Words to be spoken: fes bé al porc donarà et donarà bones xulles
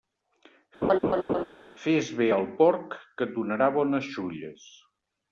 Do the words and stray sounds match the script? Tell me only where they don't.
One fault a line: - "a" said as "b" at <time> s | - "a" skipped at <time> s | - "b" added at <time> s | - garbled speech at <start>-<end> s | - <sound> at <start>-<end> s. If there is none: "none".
- laugh at 0.8-1.4 s
- "donarà" said as "que" at 3.2 s